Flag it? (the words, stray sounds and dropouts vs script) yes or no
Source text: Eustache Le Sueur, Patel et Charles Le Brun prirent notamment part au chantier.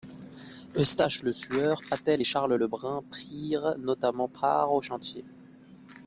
no